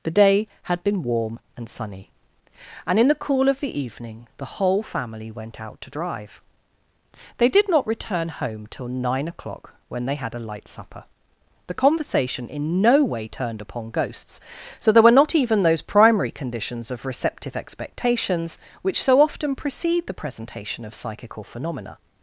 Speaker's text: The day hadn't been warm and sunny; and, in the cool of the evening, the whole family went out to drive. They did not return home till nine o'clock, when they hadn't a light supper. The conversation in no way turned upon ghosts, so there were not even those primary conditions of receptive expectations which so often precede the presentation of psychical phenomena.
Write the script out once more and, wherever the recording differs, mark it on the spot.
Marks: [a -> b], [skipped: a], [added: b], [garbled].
The day [hadn't -> had] been warm and sunny; and, in the cool of the evening, the whole family went out to drive. They did not return home till nine o'clock, when they [hadn't -> had] a light supper. The conversation in no way turned upon ghosts, so there were not even those primary conditions of receptive expectations which so often precede the presentation of psychical phenomena.